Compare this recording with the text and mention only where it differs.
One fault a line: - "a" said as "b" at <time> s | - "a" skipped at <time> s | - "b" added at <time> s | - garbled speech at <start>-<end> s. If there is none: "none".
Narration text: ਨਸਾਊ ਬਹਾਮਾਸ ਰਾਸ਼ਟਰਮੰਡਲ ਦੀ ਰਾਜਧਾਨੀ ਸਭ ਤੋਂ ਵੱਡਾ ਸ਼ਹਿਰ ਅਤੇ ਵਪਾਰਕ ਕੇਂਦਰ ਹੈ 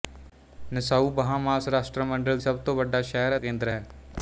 - "ਦੀ ਰਾਜਧਾਨੀ" skipped at 2.4 s
- "ਅਤੇ ਵਪਾਰਕ" skipped at 3.4 s